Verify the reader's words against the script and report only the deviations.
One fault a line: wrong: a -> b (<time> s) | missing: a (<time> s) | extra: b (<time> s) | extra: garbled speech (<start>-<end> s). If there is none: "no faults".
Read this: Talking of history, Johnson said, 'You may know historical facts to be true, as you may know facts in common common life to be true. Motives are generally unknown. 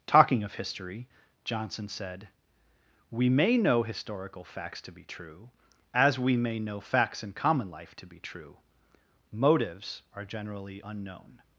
wrong: You -> We (3.1 s)
wrong: you -> we (6.2 s)
missing: common (7.7 s)